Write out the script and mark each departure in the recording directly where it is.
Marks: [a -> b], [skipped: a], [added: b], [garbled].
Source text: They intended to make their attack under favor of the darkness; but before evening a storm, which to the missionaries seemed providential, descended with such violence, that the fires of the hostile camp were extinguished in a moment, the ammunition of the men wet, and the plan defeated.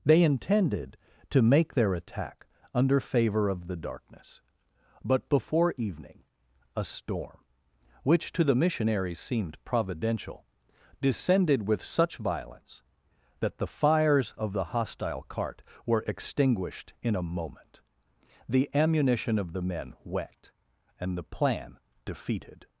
They intended to make their attack under favor of the darkness; but before evening a storm, which to the missionaries seemed providential, descended with such violence, that the fires of the hostile [camp -> cart] were extinguished in a moment, the ammunition of the men wet, and the plan defeated.